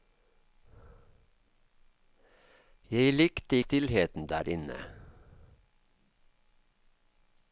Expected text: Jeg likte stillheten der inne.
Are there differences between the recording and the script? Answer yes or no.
no